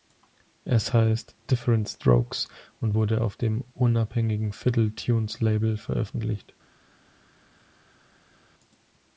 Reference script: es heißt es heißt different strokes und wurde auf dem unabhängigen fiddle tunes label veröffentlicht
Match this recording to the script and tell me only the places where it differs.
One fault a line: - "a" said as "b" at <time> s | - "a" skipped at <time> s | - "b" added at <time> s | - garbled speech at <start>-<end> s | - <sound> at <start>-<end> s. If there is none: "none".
- "es heißt" skipped at 1.4 s